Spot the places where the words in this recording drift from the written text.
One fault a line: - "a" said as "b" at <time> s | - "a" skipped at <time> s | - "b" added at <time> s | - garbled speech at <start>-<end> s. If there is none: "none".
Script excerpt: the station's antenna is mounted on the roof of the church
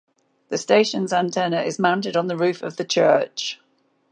none